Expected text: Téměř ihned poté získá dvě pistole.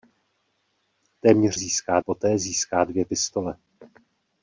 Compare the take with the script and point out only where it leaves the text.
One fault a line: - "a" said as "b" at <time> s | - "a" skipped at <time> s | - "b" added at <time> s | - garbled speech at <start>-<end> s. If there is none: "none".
- "ihned" said as "získá" at 1.5 s